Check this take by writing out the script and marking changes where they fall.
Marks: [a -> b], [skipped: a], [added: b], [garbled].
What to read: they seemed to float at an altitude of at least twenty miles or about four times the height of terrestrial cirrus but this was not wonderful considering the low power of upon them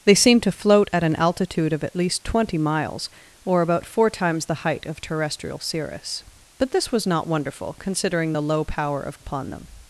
they seemed to float at an altitude of at least twenty miles or about four times the height of terrestrial cirrus but this was not wonderful considering the low power of upon them